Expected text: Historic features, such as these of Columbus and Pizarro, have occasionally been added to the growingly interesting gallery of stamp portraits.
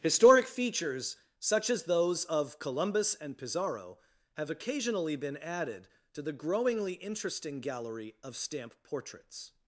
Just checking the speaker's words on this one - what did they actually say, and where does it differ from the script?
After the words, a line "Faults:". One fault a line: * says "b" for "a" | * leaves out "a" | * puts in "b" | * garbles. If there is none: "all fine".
Historic features, such as those of Columbus and Pizarro, have occasionally been added to the growingly interesting gallery of stamp portraits.
Faults:
* says "those" for "these"